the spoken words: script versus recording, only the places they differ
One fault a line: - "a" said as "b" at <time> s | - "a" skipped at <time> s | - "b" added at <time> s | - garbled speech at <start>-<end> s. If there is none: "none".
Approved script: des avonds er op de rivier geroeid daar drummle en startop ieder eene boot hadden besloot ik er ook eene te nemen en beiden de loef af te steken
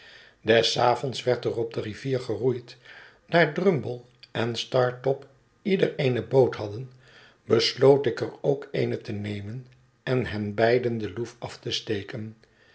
- "werd" added at 1.2 s
- "hen" added at 10.3 s